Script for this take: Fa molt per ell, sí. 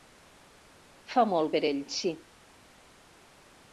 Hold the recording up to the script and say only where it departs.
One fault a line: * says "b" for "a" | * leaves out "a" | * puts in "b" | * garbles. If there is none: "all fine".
all fine